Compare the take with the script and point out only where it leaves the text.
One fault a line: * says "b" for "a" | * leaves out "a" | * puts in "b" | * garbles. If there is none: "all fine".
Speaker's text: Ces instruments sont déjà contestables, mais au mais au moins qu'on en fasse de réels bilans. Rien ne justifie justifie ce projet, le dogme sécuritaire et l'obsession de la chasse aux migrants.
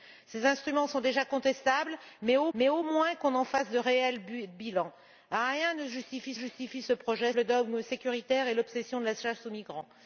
all fine